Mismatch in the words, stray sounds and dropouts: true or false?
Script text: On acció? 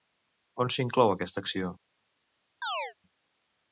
true